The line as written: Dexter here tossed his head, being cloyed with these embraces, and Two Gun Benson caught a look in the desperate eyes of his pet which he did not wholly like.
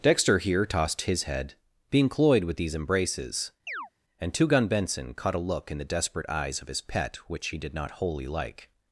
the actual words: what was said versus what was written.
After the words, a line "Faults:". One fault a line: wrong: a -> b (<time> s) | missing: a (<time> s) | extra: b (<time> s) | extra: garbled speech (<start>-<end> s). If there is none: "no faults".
Dexter here tossed his head, being cloyed with these embraces, and Two Gun Benson caught a look in the desperate eyes of his pet which he did not wholly like.
Faults:
no faults